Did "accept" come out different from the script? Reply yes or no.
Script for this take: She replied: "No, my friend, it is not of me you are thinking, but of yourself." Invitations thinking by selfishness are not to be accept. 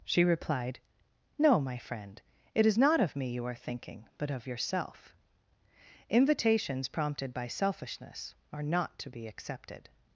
yes